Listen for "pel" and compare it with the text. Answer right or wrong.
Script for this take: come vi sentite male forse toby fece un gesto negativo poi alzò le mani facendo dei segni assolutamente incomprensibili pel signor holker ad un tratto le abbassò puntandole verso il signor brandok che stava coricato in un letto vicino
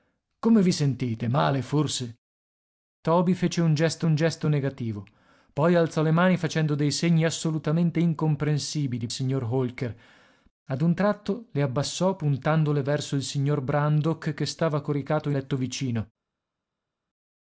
wrong